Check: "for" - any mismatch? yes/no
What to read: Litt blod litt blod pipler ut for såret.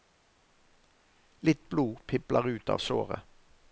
yes